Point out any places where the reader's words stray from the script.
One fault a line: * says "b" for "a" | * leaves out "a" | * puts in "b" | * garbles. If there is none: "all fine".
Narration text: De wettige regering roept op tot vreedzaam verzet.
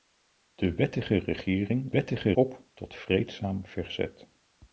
* says "wettige" for "roept"